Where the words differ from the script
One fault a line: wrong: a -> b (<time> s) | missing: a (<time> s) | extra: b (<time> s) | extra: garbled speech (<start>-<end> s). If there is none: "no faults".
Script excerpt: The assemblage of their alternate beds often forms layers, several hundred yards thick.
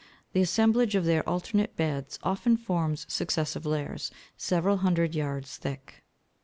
extra: successive (3.1 s)